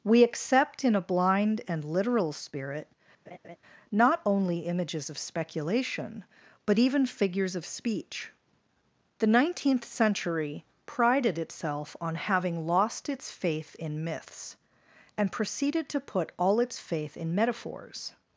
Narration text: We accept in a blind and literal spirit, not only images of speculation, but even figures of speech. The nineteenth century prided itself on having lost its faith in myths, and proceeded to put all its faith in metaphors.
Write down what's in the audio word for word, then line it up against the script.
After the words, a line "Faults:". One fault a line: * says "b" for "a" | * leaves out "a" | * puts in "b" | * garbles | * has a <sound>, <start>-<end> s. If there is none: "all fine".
We accept in a blind and literal spirit, not only images of speculation, but even figures of speech. The nineteenth century prided itself on having lost its faith in myths, and proceeded to put all its faith in metaphors.
Faults:
* has a laugh, 3.3-3.6 s